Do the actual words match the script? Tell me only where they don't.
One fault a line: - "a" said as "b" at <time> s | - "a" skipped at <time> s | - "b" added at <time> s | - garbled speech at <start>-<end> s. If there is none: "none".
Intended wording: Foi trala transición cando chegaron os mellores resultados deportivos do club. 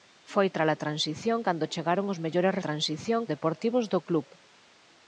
- "resultados" said as "transición" at 2.7 s